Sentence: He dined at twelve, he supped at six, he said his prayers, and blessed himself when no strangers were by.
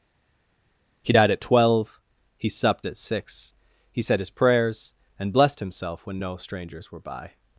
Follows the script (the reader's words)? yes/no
no